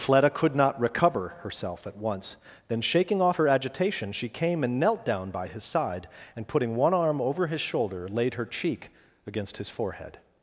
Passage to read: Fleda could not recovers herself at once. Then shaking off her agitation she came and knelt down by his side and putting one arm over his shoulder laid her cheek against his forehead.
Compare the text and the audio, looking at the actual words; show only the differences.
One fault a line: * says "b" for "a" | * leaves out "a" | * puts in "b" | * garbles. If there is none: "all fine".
* says "recover" for "recovers"